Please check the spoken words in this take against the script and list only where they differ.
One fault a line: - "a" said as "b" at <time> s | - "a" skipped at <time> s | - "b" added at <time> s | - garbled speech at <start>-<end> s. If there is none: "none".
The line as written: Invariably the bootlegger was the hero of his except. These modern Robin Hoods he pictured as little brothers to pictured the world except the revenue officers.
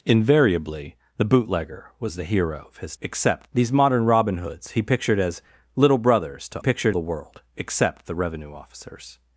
none